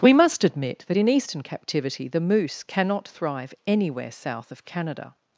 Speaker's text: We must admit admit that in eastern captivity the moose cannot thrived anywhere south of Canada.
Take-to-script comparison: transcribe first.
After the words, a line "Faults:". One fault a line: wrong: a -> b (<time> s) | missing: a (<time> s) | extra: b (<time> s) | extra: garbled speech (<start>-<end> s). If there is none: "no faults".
We must admit that in eastern captivity the moose cannot thrive anywhere south of Canada.
Faults:
missing: admit (0.8 s)
wrong: thrived -> thrive (3.1 s)